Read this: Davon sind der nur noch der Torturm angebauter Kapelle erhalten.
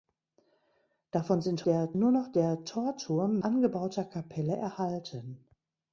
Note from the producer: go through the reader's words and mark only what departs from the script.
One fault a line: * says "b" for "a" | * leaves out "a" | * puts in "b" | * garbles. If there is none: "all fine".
all fine